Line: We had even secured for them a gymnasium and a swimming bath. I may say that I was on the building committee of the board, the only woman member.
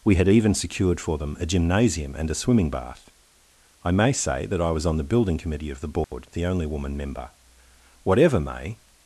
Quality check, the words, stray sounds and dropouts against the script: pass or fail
fail